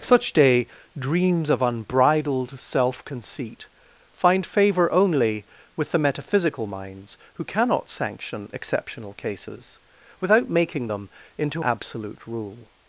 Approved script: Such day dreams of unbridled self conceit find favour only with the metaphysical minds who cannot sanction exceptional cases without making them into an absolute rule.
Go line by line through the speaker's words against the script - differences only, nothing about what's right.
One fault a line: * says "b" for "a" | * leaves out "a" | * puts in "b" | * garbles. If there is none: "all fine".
* leaves out "an"